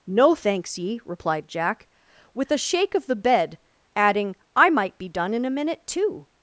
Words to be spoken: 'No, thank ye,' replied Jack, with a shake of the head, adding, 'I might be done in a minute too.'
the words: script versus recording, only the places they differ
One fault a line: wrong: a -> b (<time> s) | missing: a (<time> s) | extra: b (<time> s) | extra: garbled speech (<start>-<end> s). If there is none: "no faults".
wrong: thank -> thanks (0.3 s)
wrong: head -> bed (3.1 s)